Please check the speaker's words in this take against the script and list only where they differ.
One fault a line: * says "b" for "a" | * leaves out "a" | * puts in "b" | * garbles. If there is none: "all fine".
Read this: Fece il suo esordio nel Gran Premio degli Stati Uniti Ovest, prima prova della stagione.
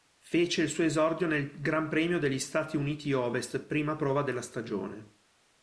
all fine